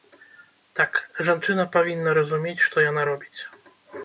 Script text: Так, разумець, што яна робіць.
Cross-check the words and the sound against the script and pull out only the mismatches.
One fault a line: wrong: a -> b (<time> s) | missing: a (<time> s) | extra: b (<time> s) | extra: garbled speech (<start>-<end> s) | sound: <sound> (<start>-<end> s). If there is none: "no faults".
extra: жанчына павінна (1.3 s)